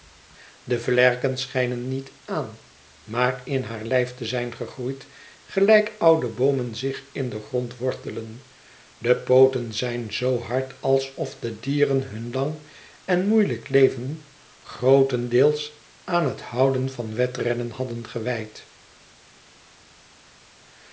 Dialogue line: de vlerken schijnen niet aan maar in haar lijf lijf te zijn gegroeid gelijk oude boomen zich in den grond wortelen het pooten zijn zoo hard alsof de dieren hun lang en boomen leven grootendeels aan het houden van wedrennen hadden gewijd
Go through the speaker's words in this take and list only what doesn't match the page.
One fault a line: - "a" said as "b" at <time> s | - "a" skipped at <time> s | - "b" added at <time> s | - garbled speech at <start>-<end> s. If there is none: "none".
- "lijf" skipped at 4.2 s
- "het" said as "de" at 9.0 s
- "boomen" said as "moeielijk" at 13.3 s